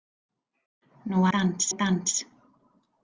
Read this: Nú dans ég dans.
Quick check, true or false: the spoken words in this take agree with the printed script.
true